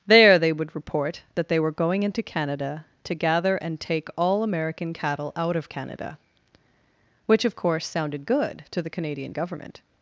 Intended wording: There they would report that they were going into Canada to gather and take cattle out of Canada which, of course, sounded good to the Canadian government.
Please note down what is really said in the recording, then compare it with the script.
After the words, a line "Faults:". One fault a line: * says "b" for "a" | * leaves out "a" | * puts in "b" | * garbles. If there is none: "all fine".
There they would report that they were going into Canada to gather and take all American cattle out of Canada which, of course, sounded good to the Canadian government.
Faults:
* puts in "all American"